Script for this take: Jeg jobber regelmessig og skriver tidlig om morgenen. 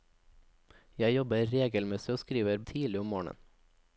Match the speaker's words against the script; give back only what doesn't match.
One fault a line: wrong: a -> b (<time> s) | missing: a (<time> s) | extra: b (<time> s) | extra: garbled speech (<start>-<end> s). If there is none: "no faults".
no faults